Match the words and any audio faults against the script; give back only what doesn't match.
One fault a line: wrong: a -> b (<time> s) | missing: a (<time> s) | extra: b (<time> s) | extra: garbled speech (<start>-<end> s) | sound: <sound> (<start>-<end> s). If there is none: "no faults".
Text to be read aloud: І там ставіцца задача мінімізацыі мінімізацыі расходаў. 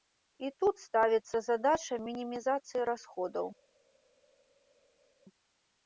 wrong: там -> тут (0.6 s)
missing: мінімізацыі (2.9 s)